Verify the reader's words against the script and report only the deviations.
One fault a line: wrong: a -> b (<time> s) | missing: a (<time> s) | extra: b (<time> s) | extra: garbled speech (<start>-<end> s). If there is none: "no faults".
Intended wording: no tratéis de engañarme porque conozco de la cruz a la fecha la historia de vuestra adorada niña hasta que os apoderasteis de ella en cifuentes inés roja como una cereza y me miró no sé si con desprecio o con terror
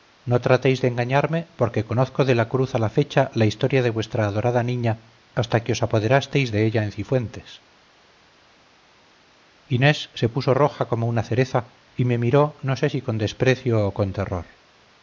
extra: se puso (10.2 s)